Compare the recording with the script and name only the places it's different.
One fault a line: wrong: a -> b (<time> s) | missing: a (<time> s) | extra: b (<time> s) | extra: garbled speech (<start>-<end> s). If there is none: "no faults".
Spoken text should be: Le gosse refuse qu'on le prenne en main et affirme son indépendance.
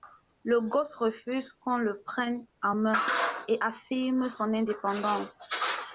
no faults